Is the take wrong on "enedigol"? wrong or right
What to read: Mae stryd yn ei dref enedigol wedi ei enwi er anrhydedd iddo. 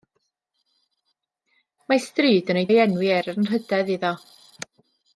wrong